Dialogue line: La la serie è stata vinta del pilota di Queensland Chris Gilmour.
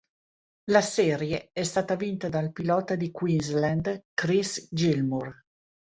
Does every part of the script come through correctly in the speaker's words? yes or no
no